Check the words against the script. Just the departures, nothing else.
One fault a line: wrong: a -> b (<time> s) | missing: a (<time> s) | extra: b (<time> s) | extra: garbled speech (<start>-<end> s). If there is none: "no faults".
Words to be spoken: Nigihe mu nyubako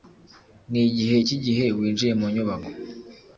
extra: cyigihe winjiye (1.3 s)